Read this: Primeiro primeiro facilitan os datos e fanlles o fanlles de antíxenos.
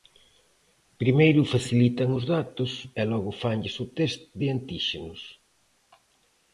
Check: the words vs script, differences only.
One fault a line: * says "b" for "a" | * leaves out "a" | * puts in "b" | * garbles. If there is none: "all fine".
* leaves out "primeiro"
* puts in "logo"
* says "test" for "fanlles"